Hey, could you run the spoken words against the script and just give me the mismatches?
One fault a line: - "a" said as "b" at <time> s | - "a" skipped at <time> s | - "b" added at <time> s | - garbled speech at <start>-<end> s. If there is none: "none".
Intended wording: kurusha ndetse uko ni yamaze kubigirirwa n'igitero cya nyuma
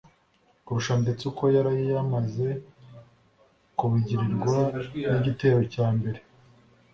- "ni" said as "yari" at 1.6 s
- "nyuma" said as "mbere" at 6.0 s